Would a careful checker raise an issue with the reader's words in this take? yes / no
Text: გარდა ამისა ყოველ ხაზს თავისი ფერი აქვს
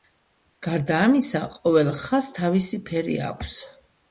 no